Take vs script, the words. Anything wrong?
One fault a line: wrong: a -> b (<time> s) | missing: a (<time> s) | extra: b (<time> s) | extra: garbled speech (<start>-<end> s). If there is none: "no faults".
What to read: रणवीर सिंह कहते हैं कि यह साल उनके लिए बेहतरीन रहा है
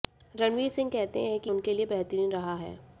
missing: यह साल (1.5 s)